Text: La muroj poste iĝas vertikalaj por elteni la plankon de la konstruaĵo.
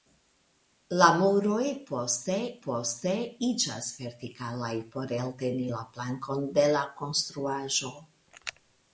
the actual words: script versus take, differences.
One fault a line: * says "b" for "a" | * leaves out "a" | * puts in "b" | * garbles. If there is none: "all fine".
* puts in "poste"